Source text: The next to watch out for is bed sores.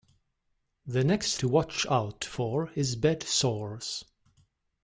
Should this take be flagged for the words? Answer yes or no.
no